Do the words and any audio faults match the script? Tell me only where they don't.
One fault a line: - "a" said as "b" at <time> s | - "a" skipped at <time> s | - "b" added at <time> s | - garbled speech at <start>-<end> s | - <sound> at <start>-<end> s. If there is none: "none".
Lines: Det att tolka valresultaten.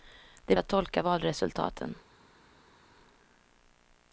none